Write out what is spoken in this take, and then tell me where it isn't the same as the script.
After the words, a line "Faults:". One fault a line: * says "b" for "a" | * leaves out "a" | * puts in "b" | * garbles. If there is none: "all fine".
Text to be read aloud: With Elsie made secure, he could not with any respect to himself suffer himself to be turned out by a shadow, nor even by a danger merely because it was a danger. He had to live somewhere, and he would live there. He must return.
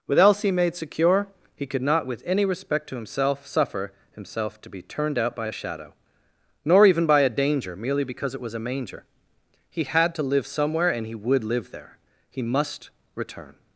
With Elsie made secure, he could not with any respect to himself suffer himself to be turned out by a shadow, nor even by a danger merely because it was a manger. He had to live somewhere, and he would live there. He must return.
Faults:
* says "manger" for "danger"